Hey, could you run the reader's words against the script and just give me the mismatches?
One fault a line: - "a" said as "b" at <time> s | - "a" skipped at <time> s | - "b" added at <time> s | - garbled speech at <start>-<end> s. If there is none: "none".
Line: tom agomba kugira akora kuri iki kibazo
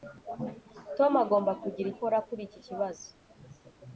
none